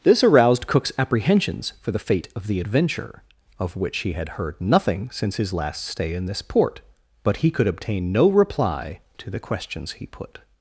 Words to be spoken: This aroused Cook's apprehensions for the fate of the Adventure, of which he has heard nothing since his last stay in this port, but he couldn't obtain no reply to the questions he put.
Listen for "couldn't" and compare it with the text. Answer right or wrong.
wrong